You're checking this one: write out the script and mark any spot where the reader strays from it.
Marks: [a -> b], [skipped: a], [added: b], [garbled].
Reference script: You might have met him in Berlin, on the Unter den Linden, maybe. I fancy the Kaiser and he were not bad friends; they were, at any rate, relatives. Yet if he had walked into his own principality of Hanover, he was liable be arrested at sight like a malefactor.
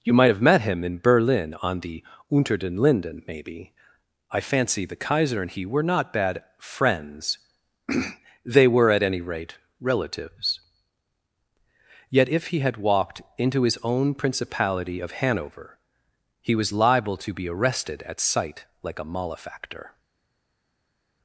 You might have met him in Berlin, on the Unter den Linden, maybe. I fancy the Kaiser and he were not bad friends; they were, at any rate, relatives. Yet if he had walked into his own principality of Hanover, he was liable [added: to] be arrested at sight like a malefactor.